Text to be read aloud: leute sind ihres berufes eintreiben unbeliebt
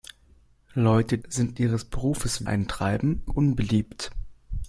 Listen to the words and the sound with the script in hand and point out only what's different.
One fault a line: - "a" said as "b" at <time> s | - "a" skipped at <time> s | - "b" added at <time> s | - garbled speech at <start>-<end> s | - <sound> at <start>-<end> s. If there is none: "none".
none